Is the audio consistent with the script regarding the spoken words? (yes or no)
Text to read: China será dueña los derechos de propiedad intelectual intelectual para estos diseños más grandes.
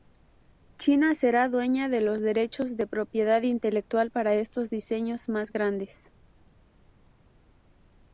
no